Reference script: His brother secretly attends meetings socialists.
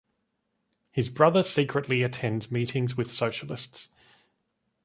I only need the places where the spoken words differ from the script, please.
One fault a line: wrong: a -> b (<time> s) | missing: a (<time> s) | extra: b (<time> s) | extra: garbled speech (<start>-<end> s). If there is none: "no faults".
extra: with (3.0 s)